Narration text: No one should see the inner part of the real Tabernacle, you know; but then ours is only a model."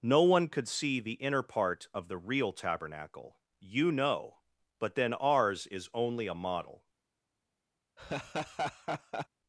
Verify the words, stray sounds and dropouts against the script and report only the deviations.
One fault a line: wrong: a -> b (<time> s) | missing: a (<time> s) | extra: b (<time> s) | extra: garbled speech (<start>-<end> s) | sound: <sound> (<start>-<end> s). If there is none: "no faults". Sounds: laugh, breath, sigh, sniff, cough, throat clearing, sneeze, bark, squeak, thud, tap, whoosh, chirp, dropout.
wrong: should -> could (0.5 s)
sound: laugh (8.0-9.3 s)